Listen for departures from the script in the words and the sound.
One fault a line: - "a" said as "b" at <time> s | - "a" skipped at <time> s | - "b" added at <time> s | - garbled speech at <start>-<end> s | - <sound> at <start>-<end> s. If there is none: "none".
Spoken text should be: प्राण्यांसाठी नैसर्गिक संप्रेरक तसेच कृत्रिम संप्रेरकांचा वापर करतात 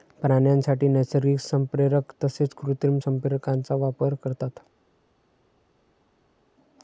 none